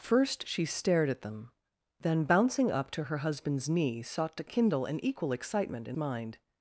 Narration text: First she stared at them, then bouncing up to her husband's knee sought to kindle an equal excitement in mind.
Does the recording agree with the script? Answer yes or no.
yes